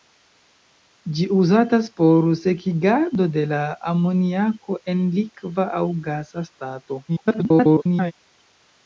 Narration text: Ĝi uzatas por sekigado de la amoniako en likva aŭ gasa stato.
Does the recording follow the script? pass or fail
fail